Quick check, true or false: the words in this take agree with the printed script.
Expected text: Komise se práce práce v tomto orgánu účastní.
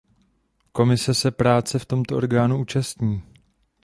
false